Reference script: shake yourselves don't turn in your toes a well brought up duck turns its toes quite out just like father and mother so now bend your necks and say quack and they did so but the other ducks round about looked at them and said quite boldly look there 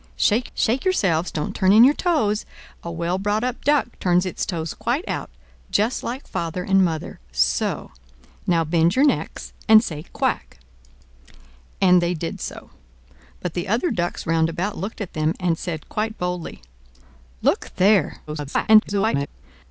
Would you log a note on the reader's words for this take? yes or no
yes